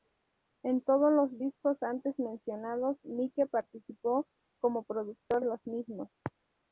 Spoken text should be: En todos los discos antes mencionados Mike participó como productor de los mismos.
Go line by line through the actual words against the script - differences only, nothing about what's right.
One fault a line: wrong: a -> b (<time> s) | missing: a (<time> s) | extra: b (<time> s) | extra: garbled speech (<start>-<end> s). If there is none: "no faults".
missing: de (5.4 s)